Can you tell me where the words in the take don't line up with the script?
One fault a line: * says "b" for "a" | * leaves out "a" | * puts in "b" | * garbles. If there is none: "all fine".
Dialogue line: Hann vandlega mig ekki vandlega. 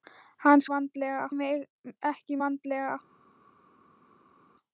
all fine